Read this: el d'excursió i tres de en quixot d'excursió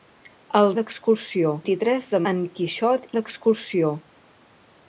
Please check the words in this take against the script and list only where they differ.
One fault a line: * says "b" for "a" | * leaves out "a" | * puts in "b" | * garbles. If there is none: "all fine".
all fine